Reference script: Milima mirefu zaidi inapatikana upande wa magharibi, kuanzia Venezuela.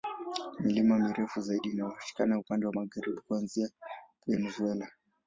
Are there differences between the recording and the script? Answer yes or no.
no